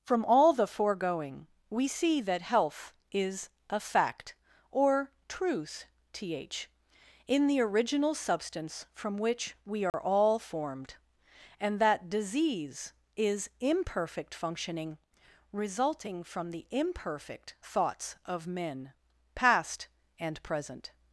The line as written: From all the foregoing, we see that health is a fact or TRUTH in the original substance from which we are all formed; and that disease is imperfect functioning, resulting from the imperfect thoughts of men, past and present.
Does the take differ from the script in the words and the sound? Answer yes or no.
yes